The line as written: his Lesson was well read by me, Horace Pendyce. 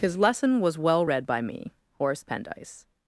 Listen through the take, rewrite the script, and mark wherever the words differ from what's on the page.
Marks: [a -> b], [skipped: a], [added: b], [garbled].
his Lesson was well read by me, Horace Pendyce.